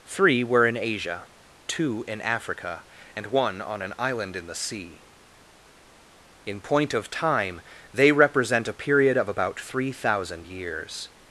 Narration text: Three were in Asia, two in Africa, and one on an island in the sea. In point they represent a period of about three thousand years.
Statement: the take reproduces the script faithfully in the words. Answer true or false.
false